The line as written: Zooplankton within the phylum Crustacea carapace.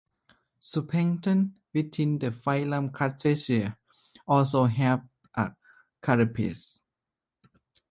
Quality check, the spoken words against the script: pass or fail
fail